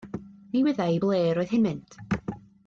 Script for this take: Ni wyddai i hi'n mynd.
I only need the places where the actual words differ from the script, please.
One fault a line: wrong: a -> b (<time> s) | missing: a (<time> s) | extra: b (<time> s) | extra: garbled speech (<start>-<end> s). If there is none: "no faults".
extra: ble roedd (1.0 s)